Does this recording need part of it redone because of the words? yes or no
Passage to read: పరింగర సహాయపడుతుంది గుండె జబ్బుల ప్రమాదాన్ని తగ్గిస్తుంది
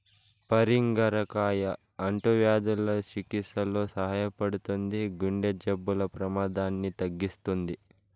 yes